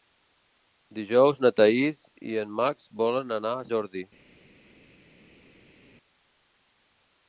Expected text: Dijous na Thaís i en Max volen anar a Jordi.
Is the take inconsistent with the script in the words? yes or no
no